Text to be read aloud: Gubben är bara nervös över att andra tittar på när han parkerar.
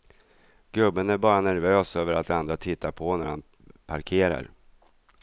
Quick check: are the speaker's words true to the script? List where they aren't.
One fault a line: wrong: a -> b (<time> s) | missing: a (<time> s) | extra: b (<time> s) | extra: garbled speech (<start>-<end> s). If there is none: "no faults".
no faults